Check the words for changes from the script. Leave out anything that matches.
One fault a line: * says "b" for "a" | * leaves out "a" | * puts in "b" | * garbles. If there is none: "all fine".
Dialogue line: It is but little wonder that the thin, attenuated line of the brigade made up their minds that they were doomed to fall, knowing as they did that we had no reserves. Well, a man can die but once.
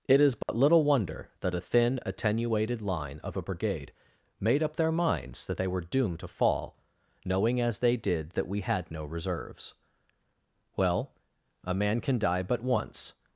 * says "a" for "the"
* says "a" for "the"